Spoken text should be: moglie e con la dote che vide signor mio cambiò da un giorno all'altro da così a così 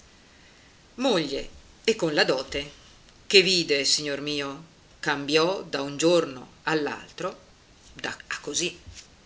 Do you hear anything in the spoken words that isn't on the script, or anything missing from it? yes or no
yes